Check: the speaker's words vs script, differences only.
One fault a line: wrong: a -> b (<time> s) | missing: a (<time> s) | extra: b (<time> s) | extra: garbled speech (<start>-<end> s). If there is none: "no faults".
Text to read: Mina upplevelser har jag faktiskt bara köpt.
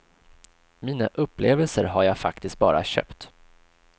no faults